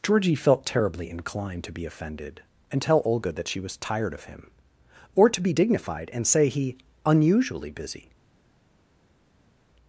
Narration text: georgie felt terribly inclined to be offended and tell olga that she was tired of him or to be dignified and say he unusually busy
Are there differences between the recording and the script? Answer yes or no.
no